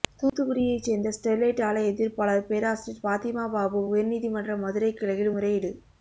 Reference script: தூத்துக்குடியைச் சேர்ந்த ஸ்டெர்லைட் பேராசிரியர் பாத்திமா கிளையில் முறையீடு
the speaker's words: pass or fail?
fail